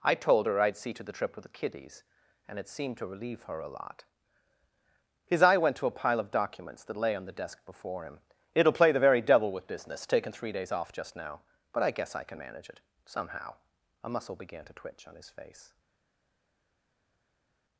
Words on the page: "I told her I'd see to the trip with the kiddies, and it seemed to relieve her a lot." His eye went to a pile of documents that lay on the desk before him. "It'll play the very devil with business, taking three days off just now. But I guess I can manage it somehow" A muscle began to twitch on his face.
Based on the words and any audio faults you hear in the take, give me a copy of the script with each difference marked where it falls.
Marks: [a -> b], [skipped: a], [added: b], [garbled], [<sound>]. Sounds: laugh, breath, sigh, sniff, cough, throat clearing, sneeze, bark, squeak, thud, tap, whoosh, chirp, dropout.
"I told her I'd see to the trip with the kiddies, and it seemed to relieve her a lot." His eye went to a pile of documents that lay on the desk before him. "It'll play the very devil with business, taking three days off just now. But I guess I can manage it somehow" A muscle began to twitch on his face.